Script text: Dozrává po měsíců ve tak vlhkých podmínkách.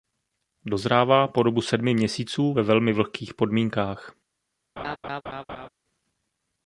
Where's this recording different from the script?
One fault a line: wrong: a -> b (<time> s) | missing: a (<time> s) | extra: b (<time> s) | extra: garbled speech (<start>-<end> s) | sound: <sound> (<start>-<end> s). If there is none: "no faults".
extra: dobu sedmi (1.4 s)
wrong: tak -> velmi (2.6 s)
sound: laugh (4.8-5.7 s)